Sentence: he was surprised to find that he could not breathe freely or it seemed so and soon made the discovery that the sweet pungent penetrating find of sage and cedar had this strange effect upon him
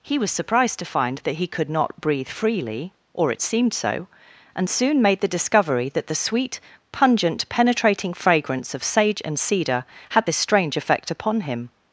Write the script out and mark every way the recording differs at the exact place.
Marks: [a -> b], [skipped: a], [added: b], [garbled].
he was surprised to find that he could not breathe freely or it seemed so and soon made the discovery that the sweet pungent penetrating [find -> fragrance] of sage and cedar had this strange effect upon him